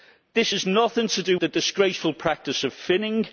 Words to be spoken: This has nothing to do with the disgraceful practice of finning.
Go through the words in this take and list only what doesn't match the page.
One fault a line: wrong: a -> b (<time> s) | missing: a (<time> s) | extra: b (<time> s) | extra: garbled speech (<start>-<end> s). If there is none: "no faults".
missing: with (1.4 s)